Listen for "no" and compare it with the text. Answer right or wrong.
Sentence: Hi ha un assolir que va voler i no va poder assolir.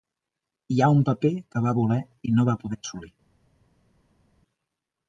right